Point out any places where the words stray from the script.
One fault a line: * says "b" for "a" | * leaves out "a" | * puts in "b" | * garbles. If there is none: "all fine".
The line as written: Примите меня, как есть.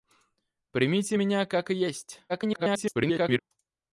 * garbles